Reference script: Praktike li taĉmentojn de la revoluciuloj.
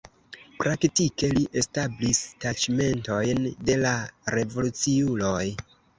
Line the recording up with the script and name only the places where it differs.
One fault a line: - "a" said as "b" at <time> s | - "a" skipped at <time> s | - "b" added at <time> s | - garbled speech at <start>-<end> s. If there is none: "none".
- "establis" added at 1.6 s